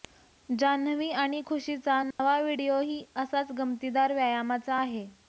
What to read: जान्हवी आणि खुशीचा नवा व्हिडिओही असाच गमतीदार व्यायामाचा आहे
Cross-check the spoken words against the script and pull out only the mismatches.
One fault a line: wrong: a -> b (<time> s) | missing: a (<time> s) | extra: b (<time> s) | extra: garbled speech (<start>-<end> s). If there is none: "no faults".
no faults